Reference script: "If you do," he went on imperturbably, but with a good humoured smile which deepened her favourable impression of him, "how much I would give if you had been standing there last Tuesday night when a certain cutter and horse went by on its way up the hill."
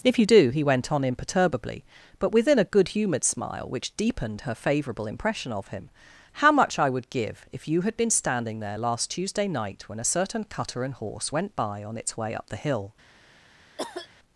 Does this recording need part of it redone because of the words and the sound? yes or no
yes